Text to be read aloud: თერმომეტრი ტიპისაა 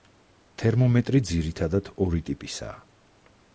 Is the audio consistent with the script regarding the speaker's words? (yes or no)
no